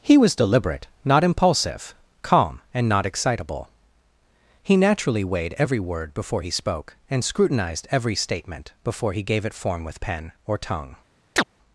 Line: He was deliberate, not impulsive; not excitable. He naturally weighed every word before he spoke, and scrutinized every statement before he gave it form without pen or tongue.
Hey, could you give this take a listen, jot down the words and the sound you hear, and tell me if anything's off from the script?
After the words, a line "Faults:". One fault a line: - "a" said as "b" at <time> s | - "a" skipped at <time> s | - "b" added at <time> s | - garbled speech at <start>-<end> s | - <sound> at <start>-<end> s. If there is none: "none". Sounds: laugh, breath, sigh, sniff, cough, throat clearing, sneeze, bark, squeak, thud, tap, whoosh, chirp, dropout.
He was deliberate, not impulsive; calm and not excitable. He naturally weighed every word before he spoke, and scrutinized every statement before he gave it form with pen or tongue.
Faults:
- "calm and" added at 2.2 s
- "without" said as "with" at 9.8 s
- chirp at 11.4-11.4 s